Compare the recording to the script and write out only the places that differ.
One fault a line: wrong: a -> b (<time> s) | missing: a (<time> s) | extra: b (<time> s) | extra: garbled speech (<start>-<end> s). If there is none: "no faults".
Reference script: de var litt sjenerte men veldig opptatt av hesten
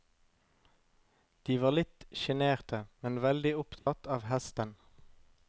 no faults